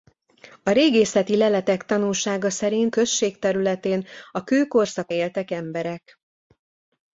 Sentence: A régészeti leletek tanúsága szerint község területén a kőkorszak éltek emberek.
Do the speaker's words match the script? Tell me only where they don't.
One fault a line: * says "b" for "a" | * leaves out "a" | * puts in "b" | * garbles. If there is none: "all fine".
all fine